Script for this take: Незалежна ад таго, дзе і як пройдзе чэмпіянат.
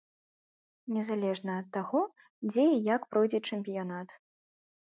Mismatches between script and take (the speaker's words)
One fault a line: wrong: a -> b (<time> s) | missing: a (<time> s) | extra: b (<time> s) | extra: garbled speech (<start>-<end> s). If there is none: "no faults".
no faults